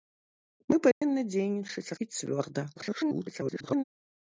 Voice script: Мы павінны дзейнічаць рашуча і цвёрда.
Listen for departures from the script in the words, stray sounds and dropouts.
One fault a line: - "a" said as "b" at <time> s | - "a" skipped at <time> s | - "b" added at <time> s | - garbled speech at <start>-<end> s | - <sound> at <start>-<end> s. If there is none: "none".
- dropout at 0.9-1.0 s
- "рашуча" skipped at 1.9 s
- garbled speech at 2.7-3.8 s